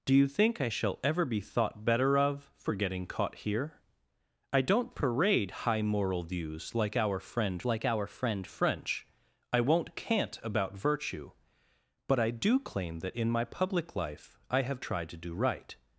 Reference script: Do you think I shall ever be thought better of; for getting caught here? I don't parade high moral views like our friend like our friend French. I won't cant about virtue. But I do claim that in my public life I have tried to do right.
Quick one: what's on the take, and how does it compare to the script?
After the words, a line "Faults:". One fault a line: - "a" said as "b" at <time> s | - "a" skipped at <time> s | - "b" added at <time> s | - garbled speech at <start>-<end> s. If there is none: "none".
Do you think I shall ever be thought better of; for getting caught here? I don't parade high moral views like our friend like our friend French. I won't cant about virtue. But I do claim that in my public life I have tried to do right.
Faults:
none